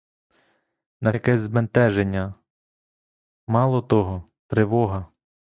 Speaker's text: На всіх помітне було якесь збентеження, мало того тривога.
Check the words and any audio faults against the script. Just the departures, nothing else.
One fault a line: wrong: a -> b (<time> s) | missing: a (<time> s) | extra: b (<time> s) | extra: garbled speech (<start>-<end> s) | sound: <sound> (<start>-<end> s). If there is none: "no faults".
missing: всіх помітне було (1.1 s)